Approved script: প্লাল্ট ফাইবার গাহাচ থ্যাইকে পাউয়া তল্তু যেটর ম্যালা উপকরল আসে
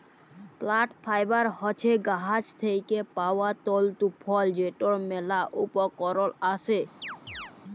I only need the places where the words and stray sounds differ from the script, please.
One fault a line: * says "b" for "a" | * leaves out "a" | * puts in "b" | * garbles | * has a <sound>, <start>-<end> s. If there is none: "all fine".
* puts in "হছে"
* puts in "ফল"
* has a chirp, 7.0-7.5 s